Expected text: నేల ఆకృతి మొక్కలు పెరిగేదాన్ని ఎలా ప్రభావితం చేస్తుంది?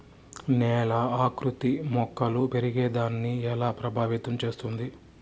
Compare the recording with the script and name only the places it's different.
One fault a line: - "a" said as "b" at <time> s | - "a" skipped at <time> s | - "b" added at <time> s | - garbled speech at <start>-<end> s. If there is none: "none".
none